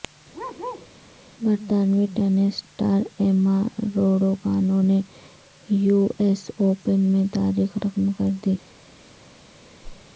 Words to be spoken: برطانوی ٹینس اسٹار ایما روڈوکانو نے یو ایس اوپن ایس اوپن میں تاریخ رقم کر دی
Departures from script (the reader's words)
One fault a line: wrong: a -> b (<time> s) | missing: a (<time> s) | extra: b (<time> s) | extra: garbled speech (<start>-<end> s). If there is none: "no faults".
missing: ایس اوپن (7.0 s)